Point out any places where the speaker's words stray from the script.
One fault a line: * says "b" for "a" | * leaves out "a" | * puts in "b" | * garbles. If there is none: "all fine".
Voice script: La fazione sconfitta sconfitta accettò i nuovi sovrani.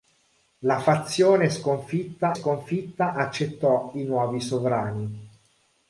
all fine